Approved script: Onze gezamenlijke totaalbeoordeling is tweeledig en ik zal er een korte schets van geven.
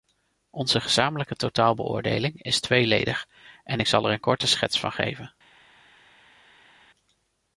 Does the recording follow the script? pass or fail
pass